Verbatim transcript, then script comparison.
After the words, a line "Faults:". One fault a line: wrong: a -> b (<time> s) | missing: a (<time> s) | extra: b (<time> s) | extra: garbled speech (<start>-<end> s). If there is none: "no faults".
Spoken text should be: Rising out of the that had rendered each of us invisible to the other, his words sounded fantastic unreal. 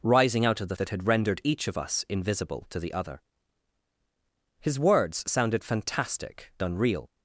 Rising out of the that had rendered each of us invisible to the other, his words sounded fantastic unreal.
Faults:
no faults